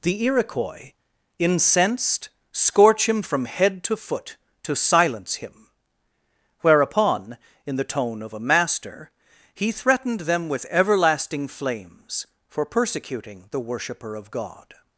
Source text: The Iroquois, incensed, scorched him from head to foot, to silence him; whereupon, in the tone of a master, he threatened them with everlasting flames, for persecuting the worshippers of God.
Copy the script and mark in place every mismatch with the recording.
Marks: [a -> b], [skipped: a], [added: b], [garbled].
The Iroquois, incensed, [scorched -> scorch] him from head to foot, to silence him; whereupon, in the tone of a master, he threatened them with everlasting flames, for persecuting the [worshippers -> worshipper] of God.